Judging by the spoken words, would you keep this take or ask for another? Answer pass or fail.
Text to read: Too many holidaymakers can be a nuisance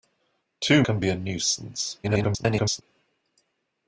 fail